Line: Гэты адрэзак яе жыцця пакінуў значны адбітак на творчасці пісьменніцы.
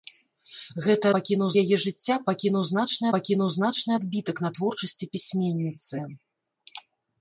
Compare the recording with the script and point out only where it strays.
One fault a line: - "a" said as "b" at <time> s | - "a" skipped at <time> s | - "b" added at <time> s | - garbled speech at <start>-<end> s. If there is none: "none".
- "адрэзак" said as "пакінуў" at 1.1 s
- "пакінуў значны" added at 3.1 s